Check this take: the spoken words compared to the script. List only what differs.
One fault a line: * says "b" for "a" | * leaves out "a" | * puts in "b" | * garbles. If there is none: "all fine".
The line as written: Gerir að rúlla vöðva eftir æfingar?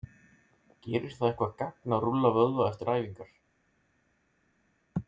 * puts in "það eitthvað gagn"